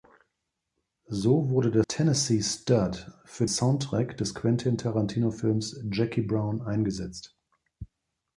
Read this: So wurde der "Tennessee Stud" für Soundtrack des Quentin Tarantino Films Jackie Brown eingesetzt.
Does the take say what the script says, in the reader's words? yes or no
yes